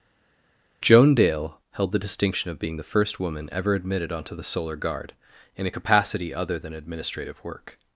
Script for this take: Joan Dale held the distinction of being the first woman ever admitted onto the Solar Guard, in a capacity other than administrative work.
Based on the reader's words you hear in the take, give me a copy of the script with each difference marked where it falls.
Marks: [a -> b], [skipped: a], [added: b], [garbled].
Joan Dale held the distinction of being the first woman ever admitted onto the Solar Guard, in a capacity other than administrative work.